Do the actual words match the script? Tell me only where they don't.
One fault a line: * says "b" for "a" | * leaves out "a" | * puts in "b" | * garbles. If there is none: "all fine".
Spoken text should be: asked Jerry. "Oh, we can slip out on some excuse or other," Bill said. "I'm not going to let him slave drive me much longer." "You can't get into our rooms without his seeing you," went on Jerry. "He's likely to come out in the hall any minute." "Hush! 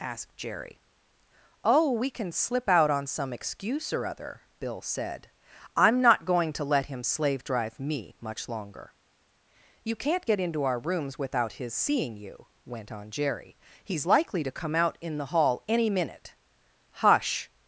all fine